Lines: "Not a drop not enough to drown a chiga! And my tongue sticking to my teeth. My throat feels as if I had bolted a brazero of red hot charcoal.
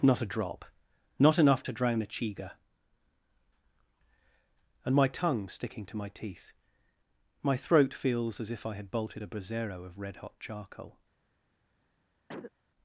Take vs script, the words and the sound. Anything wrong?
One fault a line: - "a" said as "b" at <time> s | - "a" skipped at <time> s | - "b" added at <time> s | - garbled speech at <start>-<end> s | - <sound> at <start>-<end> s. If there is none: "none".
- cough at 12.3-12.5 s